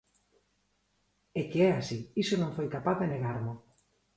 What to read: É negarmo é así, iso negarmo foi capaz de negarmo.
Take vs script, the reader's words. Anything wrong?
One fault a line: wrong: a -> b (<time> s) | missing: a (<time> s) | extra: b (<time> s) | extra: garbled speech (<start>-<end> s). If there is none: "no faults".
wrong: negarmo -> que (1.5 s)
wrong: negarmo -> non (2.4 s)